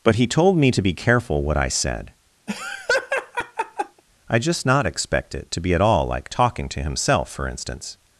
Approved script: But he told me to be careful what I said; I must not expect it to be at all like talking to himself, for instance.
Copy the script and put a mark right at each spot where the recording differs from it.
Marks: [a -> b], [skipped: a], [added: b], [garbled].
But he told me to be careful what I said; I [must -> just] not expect it to be at all like talking to himself, for instance.